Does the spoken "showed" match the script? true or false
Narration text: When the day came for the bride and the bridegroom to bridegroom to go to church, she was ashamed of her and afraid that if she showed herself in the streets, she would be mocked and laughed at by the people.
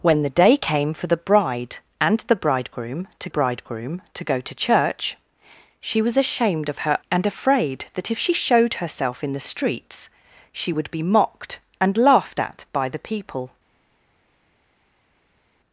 true